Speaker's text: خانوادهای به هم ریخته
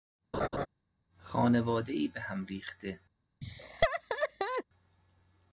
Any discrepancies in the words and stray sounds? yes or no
yes